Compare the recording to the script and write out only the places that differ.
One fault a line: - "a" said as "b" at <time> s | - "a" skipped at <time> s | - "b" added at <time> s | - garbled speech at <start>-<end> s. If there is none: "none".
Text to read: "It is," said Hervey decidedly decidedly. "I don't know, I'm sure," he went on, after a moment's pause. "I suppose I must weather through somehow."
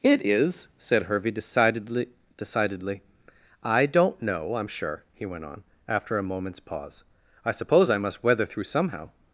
none